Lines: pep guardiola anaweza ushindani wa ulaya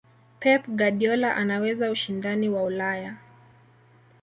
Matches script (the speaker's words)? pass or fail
pass